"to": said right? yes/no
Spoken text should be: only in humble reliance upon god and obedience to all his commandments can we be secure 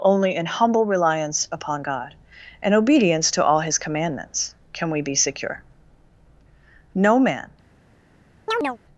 yes